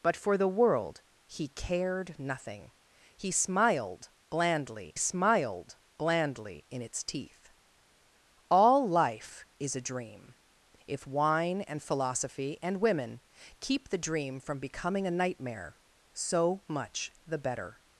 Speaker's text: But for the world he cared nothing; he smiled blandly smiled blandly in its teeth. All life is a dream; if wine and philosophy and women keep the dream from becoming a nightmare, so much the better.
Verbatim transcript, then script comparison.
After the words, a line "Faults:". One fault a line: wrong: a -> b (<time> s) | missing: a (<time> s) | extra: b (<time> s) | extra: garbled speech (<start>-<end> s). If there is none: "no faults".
But for the world he cared nothing; he smiled blandly smiled blandly in its teeth. All life is a dream; if wine and philosophy and women keep the dream from becoming a nightmare, so much the better.
Faults:
no faults